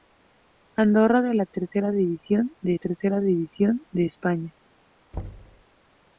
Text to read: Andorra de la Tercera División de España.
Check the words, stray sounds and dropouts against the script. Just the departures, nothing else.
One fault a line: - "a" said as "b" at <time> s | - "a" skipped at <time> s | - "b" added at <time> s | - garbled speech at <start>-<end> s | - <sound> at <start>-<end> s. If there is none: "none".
- "Tercera División de" added at 2.7 s
- thud at 5.1-5.6 s